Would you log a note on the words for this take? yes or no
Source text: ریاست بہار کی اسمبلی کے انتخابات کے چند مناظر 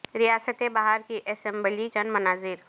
yes